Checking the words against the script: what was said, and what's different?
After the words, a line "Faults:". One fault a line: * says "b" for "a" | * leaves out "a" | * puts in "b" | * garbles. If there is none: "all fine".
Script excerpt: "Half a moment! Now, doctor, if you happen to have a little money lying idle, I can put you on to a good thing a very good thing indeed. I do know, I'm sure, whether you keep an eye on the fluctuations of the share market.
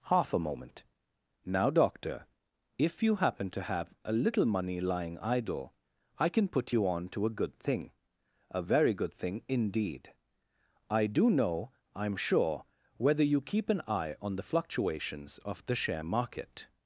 "Half a moment! Now, doctor, if you happen to have a little money lying idle, I can put you on to a good thing a very good thing indeed. I do know, I'm sure, whether you keep an eye on the fluctuations of the share market.
Faults:
all fine